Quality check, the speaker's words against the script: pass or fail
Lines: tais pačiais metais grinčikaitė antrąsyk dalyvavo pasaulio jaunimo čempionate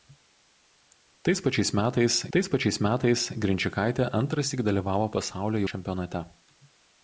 fail